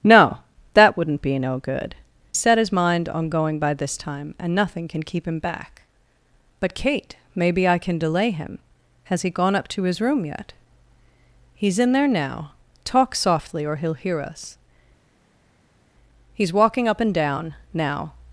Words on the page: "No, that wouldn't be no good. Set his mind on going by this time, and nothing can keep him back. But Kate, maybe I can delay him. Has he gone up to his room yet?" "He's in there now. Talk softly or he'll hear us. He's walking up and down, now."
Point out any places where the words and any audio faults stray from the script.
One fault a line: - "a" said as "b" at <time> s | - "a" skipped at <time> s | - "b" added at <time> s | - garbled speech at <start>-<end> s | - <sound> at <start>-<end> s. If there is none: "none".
none